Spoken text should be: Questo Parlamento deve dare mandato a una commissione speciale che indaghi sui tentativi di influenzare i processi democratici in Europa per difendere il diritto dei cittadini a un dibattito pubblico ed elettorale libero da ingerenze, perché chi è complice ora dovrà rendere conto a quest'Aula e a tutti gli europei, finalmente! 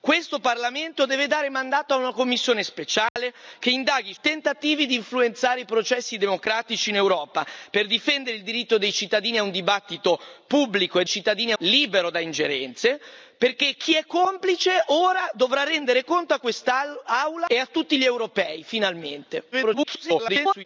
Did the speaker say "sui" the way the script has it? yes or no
no